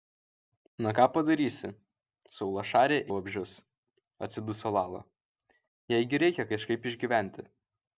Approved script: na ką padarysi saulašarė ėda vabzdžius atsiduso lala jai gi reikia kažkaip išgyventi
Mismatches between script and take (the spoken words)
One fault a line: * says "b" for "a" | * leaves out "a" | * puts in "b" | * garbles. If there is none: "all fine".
* leaves out "ėda"